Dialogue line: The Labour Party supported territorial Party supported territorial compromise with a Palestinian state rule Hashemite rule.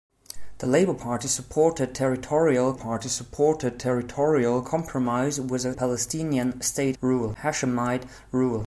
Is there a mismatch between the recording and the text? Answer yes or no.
no